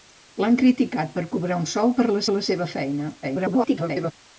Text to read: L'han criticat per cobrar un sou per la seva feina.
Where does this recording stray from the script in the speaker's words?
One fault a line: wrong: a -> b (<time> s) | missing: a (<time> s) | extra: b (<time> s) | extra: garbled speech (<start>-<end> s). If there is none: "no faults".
extra: la (2.3 s)
extra: garbled speech (3.2-4.1 s)